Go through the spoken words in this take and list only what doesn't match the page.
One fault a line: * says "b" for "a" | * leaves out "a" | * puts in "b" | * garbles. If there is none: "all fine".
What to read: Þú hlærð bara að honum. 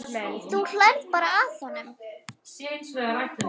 all fine